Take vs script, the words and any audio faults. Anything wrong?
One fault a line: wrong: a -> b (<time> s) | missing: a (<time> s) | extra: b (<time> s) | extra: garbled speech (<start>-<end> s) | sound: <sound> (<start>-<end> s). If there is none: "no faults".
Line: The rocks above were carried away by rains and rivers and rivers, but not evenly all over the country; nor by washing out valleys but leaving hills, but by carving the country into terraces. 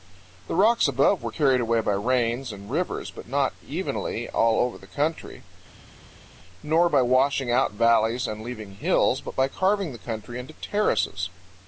missing: and rivers (3.1 s)
wrong: but -> and (8.3 s)